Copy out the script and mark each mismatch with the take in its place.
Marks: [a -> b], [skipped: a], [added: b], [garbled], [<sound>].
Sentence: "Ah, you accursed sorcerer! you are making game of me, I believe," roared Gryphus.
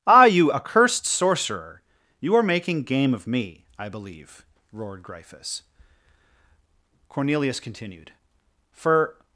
"Ah, you accursed sorcerer! you are making game of me, I believe," roared Gryphus. [added: Cornelius continued For]